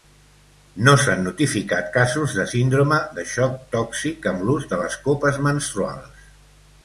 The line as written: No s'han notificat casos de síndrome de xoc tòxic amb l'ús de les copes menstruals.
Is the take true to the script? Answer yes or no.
yes